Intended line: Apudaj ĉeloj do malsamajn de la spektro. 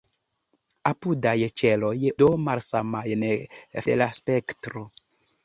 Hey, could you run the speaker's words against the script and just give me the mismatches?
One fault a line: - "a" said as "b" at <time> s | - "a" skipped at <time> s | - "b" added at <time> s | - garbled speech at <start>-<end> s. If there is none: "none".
none